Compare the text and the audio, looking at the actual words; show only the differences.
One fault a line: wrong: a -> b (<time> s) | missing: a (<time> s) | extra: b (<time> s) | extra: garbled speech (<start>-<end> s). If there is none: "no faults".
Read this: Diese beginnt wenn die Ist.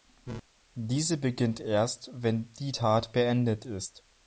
extra: erst (1.6 s)
extra: Tat beendet (2.7 s)